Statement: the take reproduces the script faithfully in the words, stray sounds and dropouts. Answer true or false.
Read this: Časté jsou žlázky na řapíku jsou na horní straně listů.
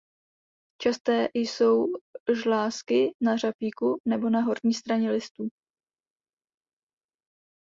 false